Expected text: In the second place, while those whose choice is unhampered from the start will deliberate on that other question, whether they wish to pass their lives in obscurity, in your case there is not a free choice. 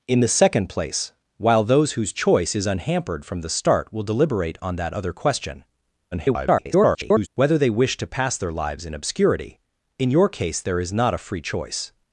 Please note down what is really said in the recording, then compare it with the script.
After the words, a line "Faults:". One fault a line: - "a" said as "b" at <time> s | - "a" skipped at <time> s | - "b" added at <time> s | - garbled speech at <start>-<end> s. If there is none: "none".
In the second place, while those whose choice is unhampered from the start will deliberate on that other question, [garbled] whether they wish to pass their lives in obscurity, in your case there is not a free choice.
Faults:
- garbled speech at 6.1-7.3 s